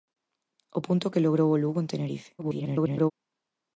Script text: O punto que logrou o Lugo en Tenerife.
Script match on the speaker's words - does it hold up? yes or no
no